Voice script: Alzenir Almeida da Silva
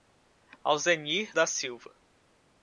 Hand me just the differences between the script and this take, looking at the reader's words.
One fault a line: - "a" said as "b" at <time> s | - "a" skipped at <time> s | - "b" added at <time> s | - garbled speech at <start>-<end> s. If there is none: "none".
- "Almeida" skipped at 1.3 s